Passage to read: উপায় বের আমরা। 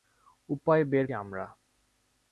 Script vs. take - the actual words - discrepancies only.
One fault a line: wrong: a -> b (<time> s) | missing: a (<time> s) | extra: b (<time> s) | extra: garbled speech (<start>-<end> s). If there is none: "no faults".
no faults